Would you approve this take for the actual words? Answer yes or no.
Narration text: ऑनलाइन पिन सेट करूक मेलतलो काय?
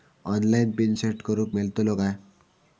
yes